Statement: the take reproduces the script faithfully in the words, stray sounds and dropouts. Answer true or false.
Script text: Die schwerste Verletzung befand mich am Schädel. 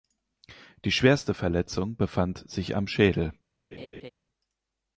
false